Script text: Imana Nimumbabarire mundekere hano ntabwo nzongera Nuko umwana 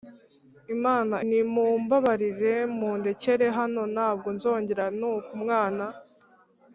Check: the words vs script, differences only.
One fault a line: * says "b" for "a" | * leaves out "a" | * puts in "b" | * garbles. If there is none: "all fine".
all fine